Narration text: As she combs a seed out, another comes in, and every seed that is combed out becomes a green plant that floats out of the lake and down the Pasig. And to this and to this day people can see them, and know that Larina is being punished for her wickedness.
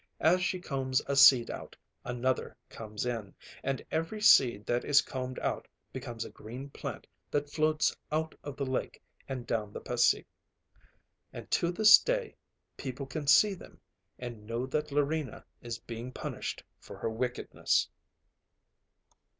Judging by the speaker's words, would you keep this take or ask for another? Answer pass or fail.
fail